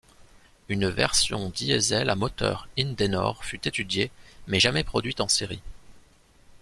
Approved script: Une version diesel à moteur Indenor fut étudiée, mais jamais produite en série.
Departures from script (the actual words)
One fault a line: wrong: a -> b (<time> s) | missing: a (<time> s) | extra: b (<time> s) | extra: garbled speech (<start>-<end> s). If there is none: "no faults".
no faults